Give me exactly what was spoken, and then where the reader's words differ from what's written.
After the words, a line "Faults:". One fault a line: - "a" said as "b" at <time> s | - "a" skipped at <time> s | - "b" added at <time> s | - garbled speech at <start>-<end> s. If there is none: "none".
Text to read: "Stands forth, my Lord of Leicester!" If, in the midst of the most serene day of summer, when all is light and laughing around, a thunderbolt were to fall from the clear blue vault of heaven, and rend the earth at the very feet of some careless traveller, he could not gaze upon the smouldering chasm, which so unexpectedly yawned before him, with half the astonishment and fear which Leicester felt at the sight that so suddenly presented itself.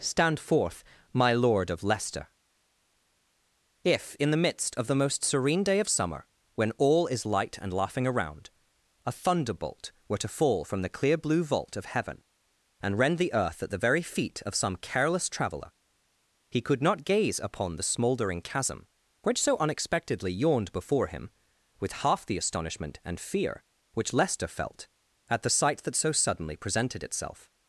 "Stand forth, my Lord of Leicester!" If, in the midst of the most serene day of summer, when all is light and laughing around, a thunderbolt were to fall from the clear blue vault of heaven, and rend the earth at the very feet of some careless traveller, he could not gaze upon the smouldering chasm, which so unexpectedly yawned before him, with half the astonishment and fear which Leicester felt at the sight that so suddenly presented itself.
Faults:
- "Stands" said as "Stand" at 0.0 s